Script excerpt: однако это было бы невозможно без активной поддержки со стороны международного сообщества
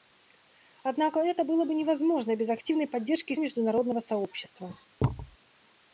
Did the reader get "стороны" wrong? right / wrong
wrong